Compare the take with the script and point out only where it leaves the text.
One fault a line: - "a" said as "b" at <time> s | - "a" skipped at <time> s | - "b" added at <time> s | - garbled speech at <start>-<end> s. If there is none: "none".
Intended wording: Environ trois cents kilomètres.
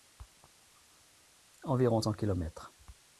- "trois" skipped at 2.0 s